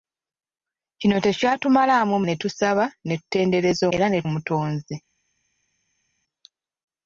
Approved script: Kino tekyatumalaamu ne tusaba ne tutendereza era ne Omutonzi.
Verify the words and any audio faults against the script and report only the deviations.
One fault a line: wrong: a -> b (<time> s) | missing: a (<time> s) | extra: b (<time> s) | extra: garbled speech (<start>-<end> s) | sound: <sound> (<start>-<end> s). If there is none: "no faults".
no faults